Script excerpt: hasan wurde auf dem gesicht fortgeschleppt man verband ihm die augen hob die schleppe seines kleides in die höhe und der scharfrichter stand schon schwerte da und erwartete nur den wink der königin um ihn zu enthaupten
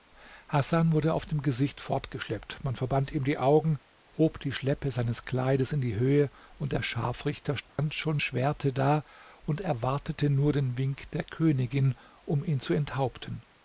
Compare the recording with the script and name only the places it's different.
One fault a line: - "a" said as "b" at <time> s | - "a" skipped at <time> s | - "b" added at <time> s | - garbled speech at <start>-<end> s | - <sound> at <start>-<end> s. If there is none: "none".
- dropout at 7.7-7.8 s